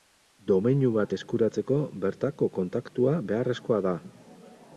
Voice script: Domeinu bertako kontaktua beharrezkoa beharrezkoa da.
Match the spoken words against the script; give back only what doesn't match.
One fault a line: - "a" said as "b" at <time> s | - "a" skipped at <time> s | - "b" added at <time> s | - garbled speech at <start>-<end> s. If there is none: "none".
- "bat eskuratzeko" added at 0.9 s
- "beharrezkoa" skipped at 3.8 s